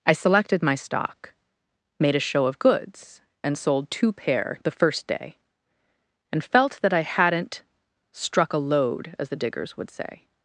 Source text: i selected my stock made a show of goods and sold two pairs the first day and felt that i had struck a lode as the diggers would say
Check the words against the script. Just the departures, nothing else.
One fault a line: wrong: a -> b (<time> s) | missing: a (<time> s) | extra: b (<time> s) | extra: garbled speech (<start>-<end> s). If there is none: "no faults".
wrong: pairs -> pair (4.1 s)
wrong: had -> hadn't (7.0 s)